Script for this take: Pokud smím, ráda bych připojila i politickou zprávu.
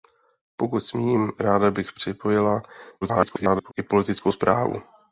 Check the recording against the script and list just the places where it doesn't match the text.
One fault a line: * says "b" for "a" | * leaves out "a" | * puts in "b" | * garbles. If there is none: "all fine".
* garbles